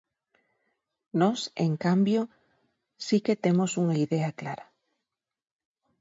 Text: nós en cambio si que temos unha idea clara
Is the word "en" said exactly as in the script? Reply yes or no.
yes